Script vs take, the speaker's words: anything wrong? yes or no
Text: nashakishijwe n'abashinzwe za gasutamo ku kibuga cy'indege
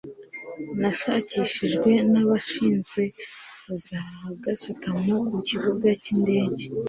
no